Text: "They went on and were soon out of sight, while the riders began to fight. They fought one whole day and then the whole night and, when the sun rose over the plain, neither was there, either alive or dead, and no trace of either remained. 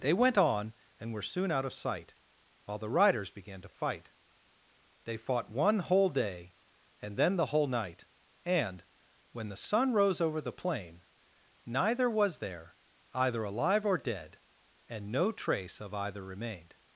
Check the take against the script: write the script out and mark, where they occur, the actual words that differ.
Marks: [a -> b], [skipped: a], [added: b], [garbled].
"They went on and were soon out of sight, while the riders began to fight. They fought one whole day and then the whole night and, when the sun rose over the plain, neither was there, either alive or dead, and no trace of either remained.